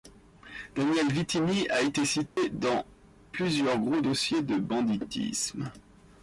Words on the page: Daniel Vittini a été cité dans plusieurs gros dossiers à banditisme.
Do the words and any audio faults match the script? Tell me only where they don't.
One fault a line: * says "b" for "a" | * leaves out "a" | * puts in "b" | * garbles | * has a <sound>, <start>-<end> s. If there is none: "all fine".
* has a dropout, 2.3-2.4 s
* says "de" for "à"